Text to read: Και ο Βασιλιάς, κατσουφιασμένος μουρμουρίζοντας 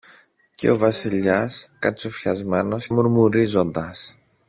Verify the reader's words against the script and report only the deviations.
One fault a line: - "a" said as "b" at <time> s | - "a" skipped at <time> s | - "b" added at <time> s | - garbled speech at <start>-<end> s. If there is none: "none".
none